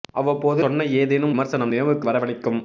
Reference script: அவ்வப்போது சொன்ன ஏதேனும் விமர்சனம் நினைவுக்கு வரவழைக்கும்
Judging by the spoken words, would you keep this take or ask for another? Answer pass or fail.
pass